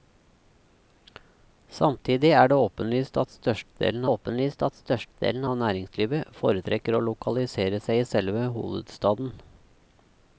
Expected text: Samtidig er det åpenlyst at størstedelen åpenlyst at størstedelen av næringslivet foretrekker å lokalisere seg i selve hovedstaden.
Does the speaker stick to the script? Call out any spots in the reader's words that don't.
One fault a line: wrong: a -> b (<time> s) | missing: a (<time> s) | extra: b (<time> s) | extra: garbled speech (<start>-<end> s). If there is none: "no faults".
no faults